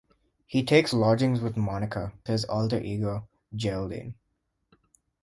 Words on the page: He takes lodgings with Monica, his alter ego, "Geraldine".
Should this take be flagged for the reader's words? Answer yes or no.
no